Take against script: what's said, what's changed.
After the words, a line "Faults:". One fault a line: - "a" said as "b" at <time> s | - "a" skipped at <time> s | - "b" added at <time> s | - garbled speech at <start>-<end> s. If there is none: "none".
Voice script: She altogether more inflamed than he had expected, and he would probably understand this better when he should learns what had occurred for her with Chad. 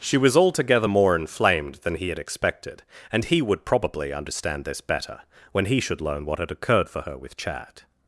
She was altogether more inflamed than he had expected, and he would probably understand this better when he should learn what had occurred for her with Chad.
Faults:
- "was" added at 0.2 s
- "learns" said as "learn" at 6.0 s